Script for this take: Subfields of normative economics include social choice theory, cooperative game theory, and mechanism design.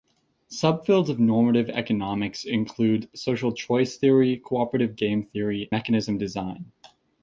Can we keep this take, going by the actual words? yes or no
no